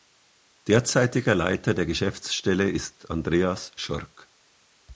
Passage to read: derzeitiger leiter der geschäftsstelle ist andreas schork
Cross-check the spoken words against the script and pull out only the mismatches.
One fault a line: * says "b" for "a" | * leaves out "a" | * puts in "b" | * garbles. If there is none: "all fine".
all fine